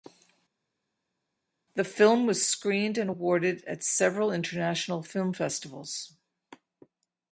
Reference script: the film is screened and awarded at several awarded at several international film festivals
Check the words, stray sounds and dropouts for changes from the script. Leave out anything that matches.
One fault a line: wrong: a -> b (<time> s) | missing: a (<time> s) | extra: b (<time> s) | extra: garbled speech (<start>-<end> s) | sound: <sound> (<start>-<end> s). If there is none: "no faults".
wrong: is -> was (2.3 s)
missing: awarded at several (4.3 s)